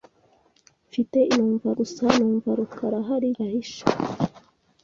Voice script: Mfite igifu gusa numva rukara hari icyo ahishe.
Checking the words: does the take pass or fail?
fail